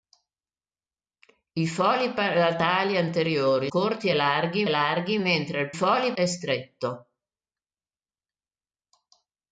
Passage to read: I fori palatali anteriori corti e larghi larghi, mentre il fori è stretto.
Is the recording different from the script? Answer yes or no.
no